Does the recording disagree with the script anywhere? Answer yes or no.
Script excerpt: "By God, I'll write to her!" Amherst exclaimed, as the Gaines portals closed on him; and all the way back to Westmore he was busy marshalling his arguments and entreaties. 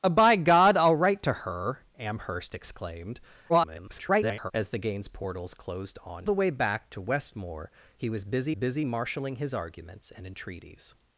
yes